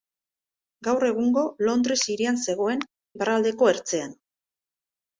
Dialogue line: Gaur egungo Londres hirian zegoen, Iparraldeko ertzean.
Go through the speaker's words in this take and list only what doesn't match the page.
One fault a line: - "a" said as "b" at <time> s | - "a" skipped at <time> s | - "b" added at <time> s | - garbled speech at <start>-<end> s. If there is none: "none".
none